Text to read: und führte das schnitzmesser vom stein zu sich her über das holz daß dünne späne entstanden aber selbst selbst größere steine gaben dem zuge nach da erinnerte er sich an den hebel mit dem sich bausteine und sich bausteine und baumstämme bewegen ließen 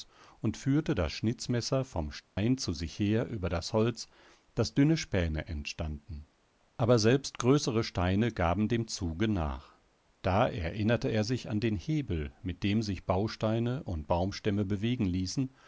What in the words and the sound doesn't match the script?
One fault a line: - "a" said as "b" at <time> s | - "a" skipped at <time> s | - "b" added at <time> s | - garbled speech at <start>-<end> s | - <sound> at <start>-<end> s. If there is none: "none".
- dropout at 2.2-2.4 s
- "selbst" skipped at 7.4 s
- "sich bausteine und" skipped at 14.1 s